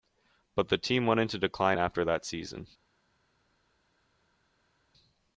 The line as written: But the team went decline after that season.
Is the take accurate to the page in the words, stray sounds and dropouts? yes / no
no